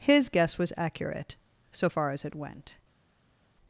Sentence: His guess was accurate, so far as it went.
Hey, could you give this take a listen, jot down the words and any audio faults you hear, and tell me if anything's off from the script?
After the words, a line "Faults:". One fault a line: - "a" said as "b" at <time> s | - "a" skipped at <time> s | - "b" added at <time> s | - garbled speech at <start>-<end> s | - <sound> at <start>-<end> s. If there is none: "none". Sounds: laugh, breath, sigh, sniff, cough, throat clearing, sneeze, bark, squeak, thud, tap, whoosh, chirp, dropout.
His guess was accurate, so far as it went.
Faults:
none